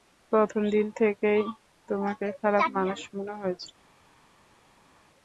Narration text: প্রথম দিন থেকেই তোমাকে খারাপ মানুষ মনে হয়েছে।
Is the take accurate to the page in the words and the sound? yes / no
yes